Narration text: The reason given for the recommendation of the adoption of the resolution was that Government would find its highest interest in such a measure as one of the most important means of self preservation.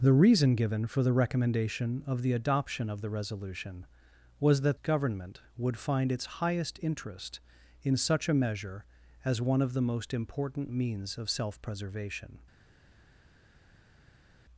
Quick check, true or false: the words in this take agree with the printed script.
true